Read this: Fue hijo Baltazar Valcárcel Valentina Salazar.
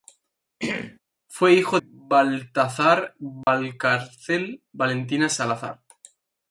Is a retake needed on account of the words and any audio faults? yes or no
yes